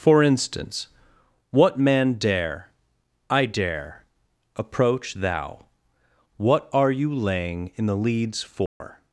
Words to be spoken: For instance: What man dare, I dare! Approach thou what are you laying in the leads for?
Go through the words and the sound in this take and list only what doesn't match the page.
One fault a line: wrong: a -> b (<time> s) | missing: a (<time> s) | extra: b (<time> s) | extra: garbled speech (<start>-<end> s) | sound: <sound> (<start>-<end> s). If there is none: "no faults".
sound: dropout (8.7-8.8 s)